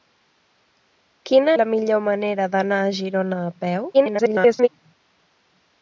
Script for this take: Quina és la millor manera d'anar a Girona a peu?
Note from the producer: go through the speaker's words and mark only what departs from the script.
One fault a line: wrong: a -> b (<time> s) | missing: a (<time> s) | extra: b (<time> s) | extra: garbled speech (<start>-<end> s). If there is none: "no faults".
missing: és (1.5 s)
extra: garbled speech (3.9-4.7 s)